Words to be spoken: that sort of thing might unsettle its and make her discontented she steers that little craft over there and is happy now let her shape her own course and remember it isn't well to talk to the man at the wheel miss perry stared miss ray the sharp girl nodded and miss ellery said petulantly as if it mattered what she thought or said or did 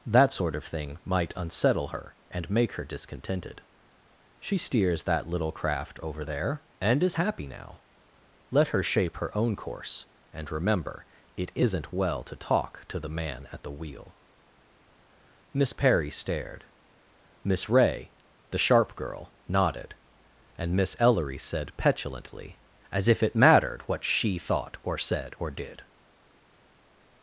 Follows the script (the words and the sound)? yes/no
no